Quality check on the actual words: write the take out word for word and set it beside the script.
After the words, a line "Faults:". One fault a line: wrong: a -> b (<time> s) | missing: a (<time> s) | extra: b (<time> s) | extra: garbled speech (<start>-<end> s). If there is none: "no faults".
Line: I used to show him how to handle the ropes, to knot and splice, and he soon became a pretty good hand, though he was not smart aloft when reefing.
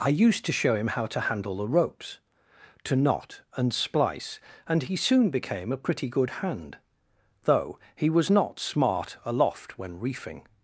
I used to show him how to handle the ropes, to knot and splice, and he soon became a pretty good hand, though he was not smart aloft when reefing.
Faults:
no faults